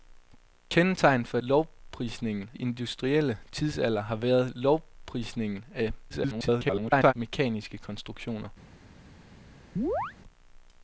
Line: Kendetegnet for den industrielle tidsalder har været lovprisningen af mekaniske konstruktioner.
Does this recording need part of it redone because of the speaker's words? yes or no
yes